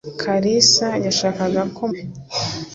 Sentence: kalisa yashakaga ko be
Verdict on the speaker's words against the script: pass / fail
pass